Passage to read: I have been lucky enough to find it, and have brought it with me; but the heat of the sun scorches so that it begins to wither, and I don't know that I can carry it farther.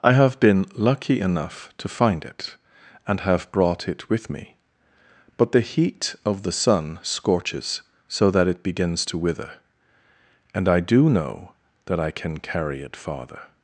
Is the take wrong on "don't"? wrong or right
wrong